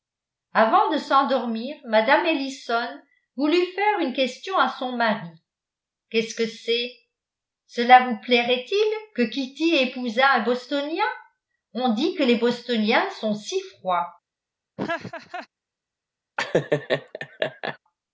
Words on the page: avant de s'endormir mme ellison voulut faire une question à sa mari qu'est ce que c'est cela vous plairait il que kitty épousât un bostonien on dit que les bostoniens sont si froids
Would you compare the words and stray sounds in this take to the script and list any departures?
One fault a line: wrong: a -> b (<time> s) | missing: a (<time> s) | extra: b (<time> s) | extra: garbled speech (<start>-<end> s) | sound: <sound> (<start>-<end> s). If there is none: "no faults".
wrong: sa -> son (4.8 s)
sound: laugh (14.8-15.5 s)
sound: laugh (16.4-17.8 s)